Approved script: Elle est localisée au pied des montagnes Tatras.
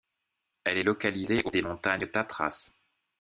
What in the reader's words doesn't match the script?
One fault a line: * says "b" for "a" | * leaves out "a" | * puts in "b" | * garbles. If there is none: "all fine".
* leaves out "pied"